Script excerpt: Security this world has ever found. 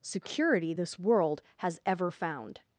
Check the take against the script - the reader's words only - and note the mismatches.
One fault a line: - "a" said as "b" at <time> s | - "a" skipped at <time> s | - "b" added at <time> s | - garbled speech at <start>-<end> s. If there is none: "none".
none